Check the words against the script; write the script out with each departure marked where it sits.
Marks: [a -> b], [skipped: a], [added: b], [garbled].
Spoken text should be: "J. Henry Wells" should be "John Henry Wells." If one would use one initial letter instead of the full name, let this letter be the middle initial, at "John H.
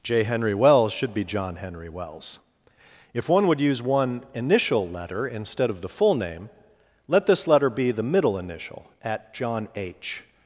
"J. Henry Wells" should be "John Henry Wells." If one would use one initial letter instead of the full name, let this letter be the middle initial, at "John H.